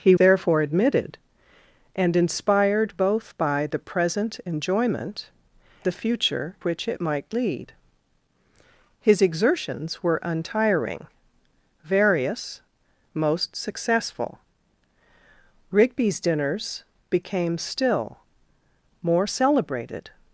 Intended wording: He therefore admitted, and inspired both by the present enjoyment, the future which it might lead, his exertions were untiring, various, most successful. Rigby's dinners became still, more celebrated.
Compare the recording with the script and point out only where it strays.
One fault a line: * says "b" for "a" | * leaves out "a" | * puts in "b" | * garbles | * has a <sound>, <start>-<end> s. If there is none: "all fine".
all fine